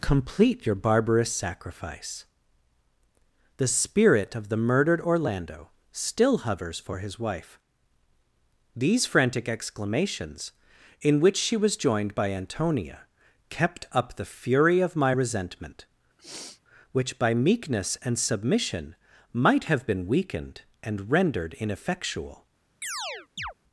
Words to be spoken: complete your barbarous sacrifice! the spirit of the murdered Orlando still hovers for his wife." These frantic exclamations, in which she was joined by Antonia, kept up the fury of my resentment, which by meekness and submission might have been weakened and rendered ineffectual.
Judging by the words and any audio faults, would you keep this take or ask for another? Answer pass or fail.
fail